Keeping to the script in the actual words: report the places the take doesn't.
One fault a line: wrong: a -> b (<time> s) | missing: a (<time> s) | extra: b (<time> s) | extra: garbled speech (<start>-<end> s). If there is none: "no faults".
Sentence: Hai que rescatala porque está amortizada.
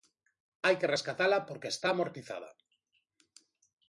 no faults